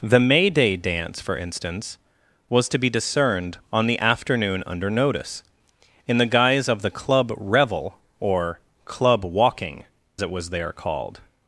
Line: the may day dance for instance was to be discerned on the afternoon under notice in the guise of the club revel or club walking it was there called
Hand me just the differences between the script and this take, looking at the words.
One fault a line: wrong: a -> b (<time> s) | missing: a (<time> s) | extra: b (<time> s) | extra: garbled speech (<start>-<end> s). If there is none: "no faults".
no faults